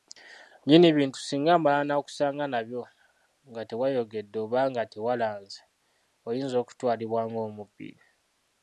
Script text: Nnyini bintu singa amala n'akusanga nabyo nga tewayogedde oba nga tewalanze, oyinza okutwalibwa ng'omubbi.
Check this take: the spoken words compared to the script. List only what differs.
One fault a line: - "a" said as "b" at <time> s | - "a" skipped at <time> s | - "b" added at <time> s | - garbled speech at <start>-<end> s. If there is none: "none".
none